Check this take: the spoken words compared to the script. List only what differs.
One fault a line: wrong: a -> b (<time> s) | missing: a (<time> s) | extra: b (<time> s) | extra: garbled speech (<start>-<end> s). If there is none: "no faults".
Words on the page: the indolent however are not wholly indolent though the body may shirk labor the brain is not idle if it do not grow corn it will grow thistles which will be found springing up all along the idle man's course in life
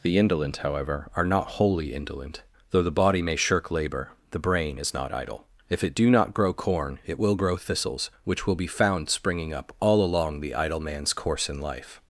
no faults